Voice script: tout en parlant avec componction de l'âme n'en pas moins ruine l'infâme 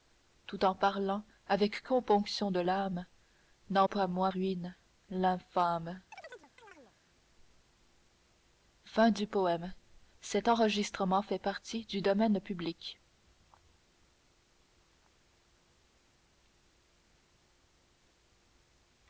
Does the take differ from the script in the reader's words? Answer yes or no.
no